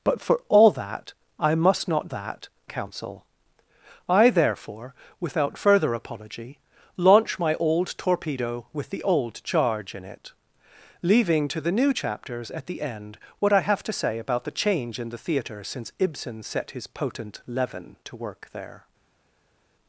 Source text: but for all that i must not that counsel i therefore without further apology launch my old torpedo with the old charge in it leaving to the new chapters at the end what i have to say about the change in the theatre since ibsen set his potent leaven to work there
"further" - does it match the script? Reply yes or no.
yes